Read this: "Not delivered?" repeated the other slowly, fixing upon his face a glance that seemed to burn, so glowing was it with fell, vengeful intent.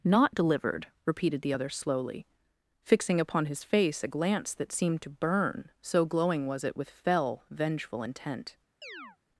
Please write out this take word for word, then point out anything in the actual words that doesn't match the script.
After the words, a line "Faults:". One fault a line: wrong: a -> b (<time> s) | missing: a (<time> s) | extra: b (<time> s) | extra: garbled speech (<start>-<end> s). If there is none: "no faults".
"Not delivered?" repeated the other slowly, fixing upon his face a glance that seemed to burn, so glowing was it with fell, vengeful intent.
Faults:
no faults